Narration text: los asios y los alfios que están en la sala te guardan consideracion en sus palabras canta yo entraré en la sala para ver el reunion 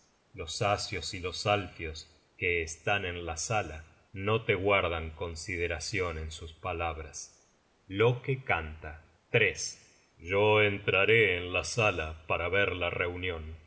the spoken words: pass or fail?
fail